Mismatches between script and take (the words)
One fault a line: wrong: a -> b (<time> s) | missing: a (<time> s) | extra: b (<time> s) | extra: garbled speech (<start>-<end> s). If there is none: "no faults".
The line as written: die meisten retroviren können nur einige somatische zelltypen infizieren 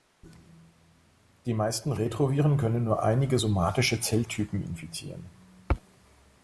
no faults